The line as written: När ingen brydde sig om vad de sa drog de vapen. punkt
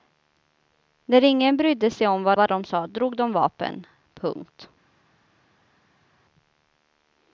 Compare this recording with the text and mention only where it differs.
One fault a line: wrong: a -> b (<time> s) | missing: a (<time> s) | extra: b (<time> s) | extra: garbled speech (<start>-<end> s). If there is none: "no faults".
extra: vad (2.3 s)